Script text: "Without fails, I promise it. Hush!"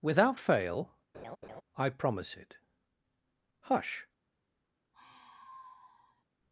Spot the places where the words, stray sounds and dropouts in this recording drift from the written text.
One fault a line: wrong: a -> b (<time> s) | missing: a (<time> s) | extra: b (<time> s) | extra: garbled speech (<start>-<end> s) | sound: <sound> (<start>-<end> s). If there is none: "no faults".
wrong: fails -> fail (0.4 s)
sound: laugh (1.1-1.6 s)
sound: sigh (4.9-6.2 s)